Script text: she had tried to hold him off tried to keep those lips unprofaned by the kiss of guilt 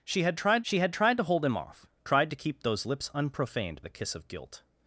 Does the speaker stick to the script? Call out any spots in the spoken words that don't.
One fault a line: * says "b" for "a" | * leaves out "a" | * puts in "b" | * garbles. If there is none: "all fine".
* puts in "she had tried"
* leaves out "by"